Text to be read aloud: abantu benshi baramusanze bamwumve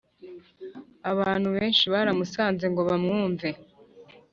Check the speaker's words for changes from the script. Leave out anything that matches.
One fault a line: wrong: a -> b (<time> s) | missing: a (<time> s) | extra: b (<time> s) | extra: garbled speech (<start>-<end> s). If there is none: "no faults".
extra: ngo (2.7 s)